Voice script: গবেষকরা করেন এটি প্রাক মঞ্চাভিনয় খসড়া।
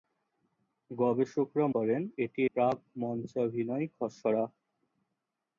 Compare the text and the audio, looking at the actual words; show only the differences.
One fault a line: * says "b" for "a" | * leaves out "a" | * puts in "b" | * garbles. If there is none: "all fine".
all fine